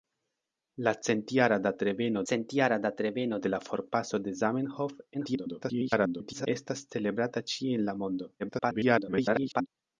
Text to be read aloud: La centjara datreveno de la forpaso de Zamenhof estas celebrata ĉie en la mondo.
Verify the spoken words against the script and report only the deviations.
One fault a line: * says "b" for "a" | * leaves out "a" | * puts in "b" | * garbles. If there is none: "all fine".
* puts in "centjara datreveno"
* garbles
* garbles